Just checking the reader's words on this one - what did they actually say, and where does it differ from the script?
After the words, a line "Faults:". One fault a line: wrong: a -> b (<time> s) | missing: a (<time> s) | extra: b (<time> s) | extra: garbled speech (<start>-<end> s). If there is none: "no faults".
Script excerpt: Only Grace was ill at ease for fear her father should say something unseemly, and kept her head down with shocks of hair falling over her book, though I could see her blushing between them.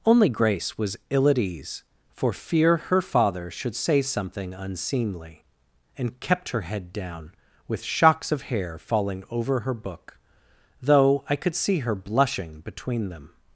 Only Grace was ill at ease for fear her father should say something unseemly, and kept her head down with shocks of hair falling over her book, though I could see her blushing between them.
Faults:
no faults